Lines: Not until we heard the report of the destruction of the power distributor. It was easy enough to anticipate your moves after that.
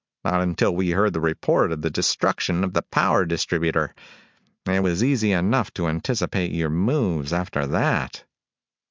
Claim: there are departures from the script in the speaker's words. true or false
false